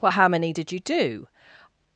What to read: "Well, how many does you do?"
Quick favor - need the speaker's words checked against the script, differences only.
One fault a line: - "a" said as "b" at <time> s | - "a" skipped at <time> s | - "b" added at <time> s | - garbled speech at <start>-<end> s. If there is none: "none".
- "does" said as "did" at 0.5 s